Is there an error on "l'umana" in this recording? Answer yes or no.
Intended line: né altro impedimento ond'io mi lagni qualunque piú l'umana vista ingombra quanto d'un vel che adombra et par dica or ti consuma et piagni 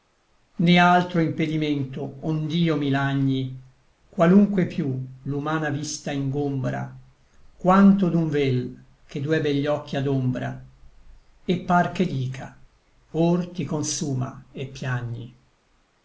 no